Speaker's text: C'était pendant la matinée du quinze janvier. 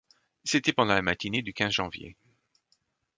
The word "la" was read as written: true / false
true